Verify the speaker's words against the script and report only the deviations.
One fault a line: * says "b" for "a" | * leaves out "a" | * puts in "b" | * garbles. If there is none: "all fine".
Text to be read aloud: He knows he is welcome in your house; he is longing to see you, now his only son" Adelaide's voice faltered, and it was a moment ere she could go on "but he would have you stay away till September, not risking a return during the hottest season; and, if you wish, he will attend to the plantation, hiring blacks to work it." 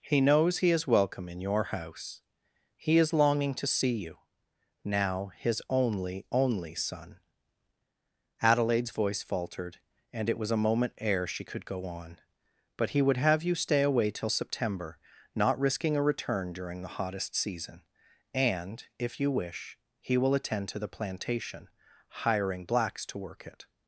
* puts in "only"